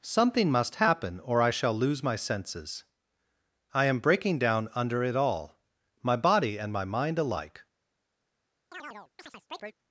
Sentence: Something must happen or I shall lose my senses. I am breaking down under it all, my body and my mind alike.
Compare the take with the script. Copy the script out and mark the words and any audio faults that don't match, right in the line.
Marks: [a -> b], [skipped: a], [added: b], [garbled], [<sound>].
Something must happen or I shall lose my senses. I am breaking down under it all, my body and my mind alike. [chirp]